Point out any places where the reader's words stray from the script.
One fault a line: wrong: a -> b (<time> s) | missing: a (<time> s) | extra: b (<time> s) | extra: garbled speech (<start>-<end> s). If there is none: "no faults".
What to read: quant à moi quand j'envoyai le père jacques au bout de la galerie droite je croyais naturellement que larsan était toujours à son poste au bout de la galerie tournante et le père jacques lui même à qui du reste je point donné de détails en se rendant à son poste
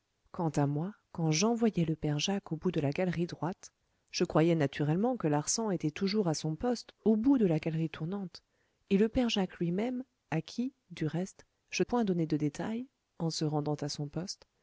no faults